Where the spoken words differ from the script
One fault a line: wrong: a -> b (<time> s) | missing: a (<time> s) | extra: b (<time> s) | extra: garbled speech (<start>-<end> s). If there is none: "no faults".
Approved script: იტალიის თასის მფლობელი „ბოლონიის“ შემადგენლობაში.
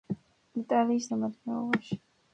missing: თასის მფლობელი ბოლონიის (1.1 s)